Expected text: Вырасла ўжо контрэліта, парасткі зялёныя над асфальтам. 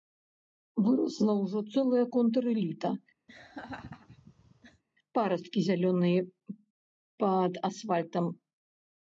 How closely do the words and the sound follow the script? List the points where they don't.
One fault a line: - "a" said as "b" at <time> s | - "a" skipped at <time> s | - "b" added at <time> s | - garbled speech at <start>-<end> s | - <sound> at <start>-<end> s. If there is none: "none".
- "цэлая" added at 1.7 s
- laugh at 3.3-4.8 s
- "над" said as "пад" at 7.3 s